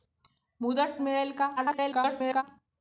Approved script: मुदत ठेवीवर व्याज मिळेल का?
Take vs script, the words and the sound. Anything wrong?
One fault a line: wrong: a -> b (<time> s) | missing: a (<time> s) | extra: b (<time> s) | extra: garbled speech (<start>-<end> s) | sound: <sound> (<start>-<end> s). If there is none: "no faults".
missing: ठेवीवर व्याज (1.0 s)
extra: garbled speech (1.6-2.4 s)